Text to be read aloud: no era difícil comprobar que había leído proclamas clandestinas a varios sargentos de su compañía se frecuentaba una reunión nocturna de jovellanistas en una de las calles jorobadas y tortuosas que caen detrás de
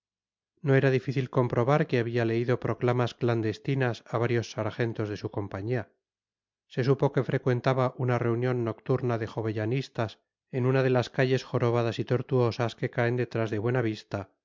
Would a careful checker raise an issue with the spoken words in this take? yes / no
yes